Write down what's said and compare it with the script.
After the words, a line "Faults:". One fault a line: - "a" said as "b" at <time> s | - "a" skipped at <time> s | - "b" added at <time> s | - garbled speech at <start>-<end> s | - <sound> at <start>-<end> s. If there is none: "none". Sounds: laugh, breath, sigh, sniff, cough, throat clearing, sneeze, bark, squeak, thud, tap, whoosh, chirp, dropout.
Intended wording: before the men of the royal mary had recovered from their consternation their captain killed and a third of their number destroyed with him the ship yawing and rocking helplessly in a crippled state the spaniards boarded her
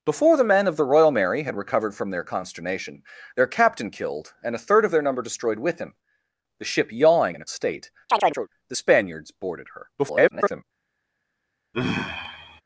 before the men of the royal mary had recovered from their consternation their captain killed and a third of their number destroyed with him the ship yawing in a state the spaniards boarded her [garbled]
Faults:
- "and rocking helplessly" skipped at 7.4 s
- "crippled" skipped at 7.4 s
- chirp at 8.1-8.5 s
- garbled speech at 10.0-10.6 s
- sigh at 11.7-12.6 s